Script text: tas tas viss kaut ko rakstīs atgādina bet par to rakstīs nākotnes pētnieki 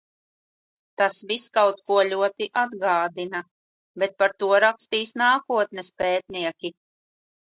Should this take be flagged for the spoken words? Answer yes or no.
yes